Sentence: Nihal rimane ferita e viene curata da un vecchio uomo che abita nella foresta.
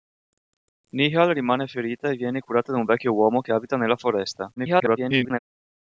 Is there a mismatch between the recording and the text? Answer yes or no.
yes